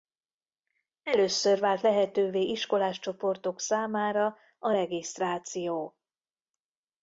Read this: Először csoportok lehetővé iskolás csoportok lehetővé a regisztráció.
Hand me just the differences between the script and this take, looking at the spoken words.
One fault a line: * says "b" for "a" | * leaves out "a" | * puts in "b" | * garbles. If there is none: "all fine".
* says "vált" for "csoportok"
* says "számára" for "lehetővé"